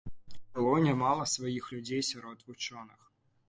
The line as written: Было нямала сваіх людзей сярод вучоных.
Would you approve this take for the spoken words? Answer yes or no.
yes